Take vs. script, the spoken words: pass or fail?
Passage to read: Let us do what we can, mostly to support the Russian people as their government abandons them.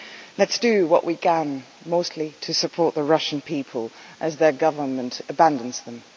pass